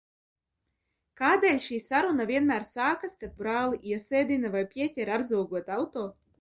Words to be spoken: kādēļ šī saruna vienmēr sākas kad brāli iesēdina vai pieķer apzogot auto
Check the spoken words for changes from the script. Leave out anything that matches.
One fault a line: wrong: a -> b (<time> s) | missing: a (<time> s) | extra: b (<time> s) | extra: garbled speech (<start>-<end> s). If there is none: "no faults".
no faults